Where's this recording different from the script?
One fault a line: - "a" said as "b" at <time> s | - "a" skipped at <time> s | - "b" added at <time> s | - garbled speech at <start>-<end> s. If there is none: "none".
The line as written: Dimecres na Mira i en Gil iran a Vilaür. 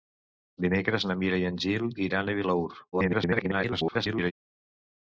- garbled speech at 2.9-4.3 s